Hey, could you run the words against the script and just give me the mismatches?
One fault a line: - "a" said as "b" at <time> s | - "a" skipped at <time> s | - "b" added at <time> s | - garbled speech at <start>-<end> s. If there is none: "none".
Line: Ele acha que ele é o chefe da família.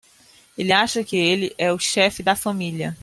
none